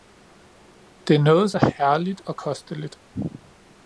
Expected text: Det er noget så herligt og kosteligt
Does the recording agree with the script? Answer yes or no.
yes